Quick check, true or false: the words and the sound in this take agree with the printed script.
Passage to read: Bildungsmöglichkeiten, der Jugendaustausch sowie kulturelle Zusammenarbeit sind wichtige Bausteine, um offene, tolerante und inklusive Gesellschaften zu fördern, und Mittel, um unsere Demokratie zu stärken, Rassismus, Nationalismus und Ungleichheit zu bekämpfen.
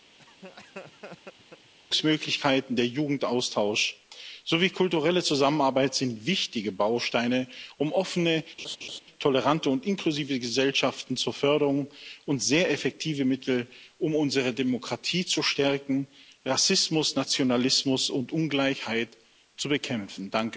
false